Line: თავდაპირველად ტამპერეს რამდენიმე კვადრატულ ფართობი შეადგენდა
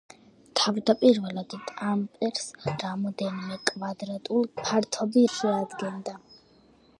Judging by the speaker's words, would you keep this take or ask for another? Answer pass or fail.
pass